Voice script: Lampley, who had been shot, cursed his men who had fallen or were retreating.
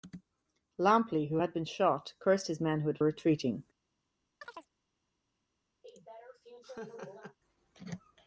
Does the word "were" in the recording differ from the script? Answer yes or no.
yes